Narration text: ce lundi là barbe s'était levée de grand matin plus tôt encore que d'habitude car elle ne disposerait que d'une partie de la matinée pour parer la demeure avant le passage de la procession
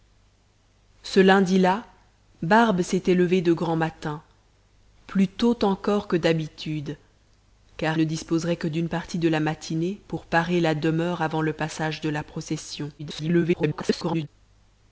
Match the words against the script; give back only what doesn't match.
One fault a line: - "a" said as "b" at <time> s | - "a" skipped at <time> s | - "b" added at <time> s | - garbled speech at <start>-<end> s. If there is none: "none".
- "elle" skipped at 8.0 s
- garbled speech at 13.0-14.3 s